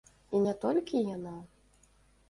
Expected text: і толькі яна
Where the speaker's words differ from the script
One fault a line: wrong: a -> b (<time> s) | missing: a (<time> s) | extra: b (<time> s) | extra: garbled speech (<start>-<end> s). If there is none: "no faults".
extra: не (0.4 s)